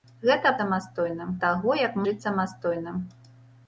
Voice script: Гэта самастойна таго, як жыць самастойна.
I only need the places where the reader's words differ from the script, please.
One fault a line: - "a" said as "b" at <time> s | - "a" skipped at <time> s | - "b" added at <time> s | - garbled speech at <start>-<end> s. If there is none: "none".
none